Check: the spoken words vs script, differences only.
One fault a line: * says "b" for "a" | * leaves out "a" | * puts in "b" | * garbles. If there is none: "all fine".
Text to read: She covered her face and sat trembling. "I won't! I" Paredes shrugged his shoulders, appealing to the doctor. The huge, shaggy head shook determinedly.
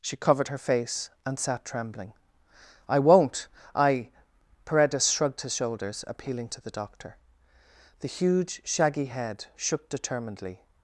all fine